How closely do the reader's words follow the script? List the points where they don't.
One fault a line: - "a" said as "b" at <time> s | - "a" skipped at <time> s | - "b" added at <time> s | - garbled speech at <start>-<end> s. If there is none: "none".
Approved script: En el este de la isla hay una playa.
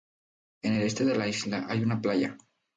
none